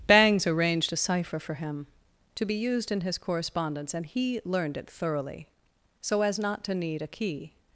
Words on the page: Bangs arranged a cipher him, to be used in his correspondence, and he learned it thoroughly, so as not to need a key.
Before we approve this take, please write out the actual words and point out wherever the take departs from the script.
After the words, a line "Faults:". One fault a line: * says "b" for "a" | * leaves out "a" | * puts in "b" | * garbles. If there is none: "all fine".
Bangs arranged a cipher for him, to be used in his correspondence, and he learned it thoroughly, so as not to need a key.
Faults:
* puts in "for"